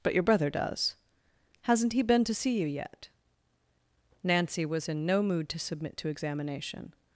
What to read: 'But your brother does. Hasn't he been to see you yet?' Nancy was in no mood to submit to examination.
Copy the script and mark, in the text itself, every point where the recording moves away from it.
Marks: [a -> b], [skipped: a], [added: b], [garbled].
'But your brother does. Hasn't he been to see you yet?' Nancy was in no mood to submit to examination.